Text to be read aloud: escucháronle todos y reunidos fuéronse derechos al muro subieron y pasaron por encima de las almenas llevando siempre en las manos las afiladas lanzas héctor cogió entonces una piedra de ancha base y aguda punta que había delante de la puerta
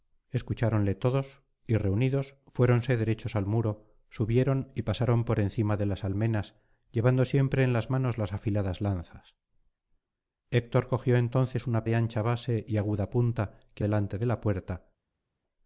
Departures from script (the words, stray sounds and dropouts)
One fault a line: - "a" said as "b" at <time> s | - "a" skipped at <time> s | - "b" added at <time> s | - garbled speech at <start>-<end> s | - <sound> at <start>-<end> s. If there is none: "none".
- "piedra" skipped at 11.8 s
- "había" skipped at 13.8 s